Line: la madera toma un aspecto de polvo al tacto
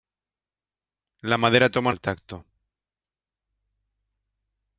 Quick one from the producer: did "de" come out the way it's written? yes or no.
no